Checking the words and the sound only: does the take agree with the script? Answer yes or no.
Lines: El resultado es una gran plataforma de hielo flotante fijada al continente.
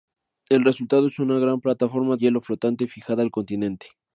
no